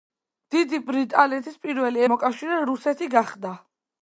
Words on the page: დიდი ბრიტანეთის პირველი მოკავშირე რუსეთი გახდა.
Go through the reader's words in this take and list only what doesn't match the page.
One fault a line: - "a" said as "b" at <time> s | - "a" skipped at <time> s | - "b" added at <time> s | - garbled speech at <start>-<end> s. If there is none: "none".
none